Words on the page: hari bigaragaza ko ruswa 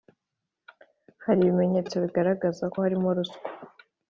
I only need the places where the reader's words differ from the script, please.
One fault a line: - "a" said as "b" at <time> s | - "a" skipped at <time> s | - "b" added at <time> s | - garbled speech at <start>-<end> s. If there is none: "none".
- "ibimenyetso" added at 1.4 s
- "harimo" added at 2.8 s